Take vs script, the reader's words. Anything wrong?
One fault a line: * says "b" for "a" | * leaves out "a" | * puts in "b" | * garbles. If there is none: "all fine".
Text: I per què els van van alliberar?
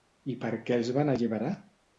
* leaves out "van"